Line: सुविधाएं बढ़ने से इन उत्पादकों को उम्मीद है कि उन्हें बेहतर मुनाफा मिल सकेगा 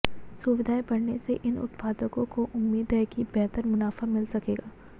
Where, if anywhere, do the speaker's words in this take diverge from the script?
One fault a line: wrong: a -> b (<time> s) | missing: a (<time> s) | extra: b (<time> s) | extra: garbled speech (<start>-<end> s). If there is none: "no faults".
missing: उन्हें (3.2 s)